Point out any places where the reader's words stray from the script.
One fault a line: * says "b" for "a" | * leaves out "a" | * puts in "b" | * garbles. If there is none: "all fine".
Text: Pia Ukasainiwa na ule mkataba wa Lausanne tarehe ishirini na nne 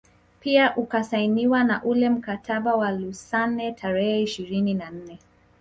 all fine